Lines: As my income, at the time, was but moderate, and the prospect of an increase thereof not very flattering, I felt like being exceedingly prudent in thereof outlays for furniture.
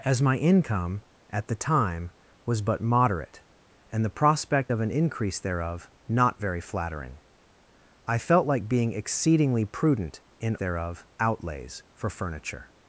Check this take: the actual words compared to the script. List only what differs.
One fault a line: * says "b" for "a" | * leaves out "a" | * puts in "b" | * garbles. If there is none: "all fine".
all fine